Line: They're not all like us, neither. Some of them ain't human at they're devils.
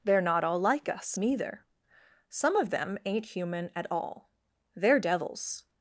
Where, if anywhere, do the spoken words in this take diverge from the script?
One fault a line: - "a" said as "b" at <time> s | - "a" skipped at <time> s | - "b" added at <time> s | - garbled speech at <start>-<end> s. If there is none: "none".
- "all" added at 3.9 s